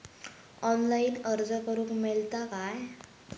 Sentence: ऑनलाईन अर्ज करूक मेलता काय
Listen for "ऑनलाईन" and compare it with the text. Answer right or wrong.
right